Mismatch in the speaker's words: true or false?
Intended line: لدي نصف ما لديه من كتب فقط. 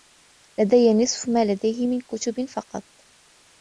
false